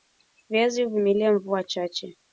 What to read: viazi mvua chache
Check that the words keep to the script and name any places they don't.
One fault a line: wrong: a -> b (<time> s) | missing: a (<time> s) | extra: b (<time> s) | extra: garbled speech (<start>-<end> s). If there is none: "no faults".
extra: huvumilia (0.8 s)